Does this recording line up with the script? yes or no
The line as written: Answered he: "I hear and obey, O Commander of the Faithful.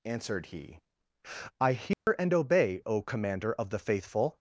yes